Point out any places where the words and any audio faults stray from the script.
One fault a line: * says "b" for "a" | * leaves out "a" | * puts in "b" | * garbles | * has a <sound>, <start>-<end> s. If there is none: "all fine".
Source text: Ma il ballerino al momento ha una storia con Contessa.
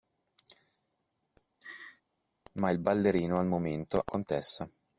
* has a laugh, 1.6-2.0 s
* leaves out "una storia con"